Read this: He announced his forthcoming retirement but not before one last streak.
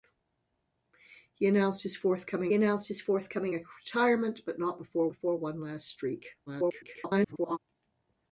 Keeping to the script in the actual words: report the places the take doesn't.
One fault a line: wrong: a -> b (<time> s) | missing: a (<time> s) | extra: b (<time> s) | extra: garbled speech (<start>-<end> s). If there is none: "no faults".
extra: announced his forthcoming (2.5 s)
extra: before (5.1 s)
extra: garbled speech (6.5-7.6 s)